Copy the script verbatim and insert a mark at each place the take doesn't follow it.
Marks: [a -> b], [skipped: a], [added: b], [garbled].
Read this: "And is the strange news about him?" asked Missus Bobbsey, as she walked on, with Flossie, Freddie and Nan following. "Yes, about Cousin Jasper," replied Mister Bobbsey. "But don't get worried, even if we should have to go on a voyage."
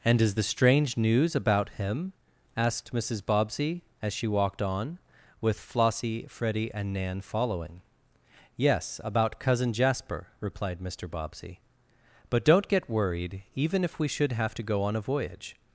"And is the strange news about him?" asked Missus Bobbsey, as she walked on, with Flossie, Freddie and Nan following. "Yes, about Cousin Jasper," replied Mister Bobbsey. "But don't get worried, even if we should have to go on a voyage."